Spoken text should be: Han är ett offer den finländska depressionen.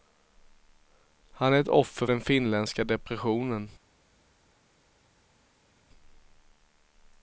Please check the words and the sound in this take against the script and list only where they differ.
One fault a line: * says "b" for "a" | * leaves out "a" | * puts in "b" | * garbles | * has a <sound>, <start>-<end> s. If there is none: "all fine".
all fine